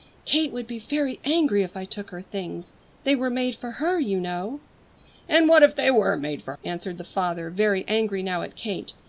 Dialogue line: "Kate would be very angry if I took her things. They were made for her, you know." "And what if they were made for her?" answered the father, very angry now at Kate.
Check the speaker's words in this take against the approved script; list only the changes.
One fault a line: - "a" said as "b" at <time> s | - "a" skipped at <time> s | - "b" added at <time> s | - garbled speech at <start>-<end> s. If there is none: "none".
- "her" skipped at 6.5 s